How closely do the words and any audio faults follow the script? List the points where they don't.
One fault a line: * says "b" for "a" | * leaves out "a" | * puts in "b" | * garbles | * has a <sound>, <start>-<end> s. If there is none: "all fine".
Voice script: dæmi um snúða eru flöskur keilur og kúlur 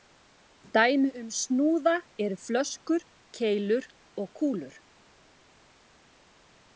all fine